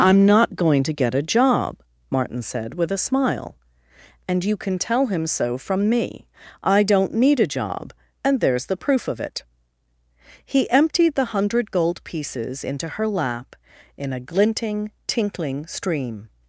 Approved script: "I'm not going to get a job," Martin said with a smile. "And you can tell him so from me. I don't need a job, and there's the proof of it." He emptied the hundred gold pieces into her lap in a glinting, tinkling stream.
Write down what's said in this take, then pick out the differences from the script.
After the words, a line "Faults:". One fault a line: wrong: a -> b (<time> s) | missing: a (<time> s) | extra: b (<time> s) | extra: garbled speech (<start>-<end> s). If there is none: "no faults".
"I'm not going to get a job," Martin said with a smile. "And you can tell him so from me. I don't need a job, and there's the proof of it." He emptied the hundred gold pieces into her lap in a glinting, tinkling stream.
Faults:
no faults